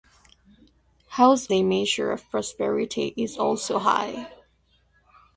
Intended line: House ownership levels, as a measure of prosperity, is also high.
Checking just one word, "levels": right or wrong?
wrong